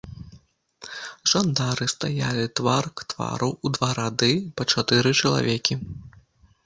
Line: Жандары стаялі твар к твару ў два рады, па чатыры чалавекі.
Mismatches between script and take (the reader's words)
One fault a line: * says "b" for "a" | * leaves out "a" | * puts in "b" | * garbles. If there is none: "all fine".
all fine